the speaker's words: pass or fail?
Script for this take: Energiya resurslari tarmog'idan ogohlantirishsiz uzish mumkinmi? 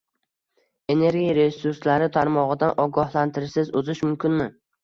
pass